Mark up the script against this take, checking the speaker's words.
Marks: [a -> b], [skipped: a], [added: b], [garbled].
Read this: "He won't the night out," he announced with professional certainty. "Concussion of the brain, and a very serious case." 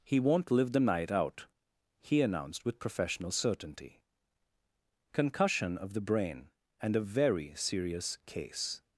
"He won't [added: live] the night out," he announced with professional certainty. "Concussion of the brain, and a very serious case."